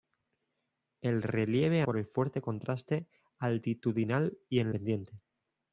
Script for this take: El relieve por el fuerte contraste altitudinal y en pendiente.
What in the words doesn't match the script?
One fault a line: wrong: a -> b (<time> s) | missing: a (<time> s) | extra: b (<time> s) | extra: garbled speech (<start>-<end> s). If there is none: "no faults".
no faults